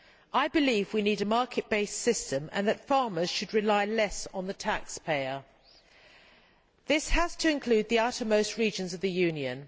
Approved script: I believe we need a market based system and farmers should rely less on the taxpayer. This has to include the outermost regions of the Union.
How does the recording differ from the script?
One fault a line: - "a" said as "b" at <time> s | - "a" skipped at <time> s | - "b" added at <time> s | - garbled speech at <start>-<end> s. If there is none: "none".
- "that" added at 2.7 s